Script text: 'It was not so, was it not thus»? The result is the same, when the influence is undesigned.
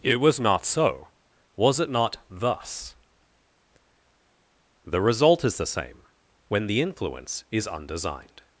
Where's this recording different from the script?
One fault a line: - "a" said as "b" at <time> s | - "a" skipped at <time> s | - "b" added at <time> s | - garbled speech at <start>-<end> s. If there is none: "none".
none